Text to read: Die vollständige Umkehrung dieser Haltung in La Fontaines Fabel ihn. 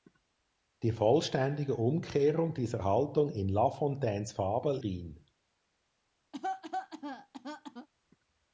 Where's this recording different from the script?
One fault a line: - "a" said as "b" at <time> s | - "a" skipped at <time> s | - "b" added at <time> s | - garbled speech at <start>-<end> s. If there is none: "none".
none